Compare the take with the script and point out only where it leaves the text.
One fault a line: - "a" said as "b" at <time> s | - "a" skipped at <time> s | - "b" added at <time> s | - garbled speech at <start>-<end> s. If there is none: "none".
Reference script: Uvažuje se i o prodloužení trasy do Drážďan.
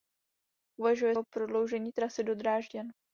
- "se i" skipped at 1.1 s